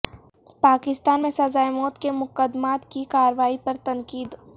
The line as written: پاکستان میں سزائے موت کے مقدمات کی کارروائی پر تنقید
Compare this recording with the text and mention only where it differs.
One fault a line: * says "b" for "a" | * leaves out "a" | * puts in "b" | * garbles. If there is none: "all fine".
all fine